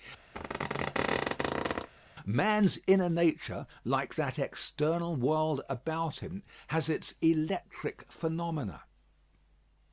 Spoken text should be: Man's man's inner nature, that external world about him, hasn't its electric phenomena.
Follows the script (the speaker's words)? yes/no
no